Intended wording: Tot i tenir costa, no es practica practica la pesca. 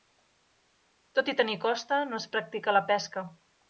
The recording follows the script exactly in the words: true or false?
false